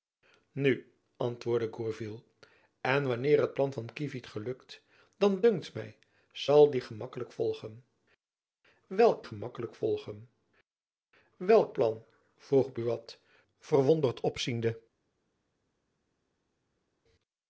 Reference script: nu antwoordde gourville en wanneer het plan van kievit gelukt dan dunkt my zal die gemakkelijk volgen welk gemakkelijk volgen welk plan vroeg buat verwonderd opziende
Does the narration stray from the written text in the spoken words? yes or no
no